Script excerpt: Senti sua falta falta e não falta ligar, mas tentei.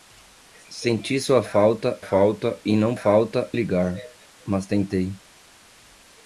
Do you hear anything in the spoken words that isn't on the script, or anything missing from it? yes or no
no